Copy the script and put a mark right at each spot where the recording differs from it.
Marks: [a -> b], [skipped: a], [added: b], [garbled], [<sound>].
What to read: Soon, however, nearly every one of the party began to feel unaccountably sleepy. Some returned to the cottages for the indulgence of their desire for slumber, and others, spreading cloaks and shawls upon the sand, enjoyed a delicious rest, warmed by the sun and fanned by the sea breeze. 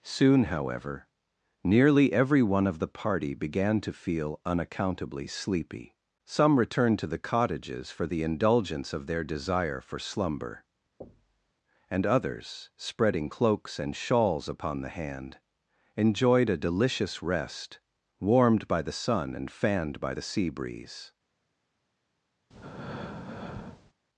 Soon, however, nearly every one of the party began to feel unaccountably sleepy. Some returned to the cottages for the indulgence of their desire for slumber, [thud] and others, spreading cloaks and shawls upon the [sand, -> hand] enjoyed a delicious rest, warmed by the sun and fanned by the sea breeze. [breath]